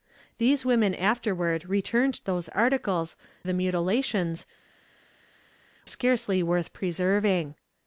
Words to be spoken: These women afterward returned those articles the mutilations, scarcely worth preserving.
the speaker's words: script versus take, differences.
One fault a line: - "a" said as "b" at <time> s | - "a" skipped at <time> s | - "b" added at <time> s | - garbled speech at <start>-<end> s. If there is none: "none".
none